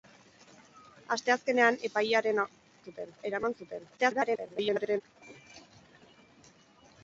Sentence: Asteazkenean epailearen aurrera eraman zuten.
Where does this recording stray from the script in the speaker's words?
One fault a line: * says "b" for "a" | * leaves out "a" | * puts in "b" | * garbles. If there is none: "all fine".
* says "zuten" for "aurrera"
* garbles